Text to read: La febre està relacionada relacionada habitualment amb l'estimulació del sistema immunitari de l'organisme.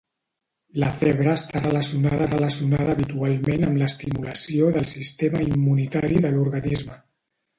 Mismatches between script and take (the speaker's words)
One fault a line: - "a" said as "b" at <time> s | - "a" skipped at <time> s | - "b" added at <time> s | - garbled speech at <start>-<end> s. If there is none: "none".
none